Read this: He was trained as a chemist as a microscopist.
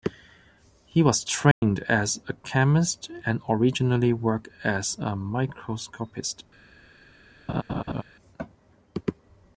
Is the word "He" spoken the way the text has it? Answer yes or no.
yes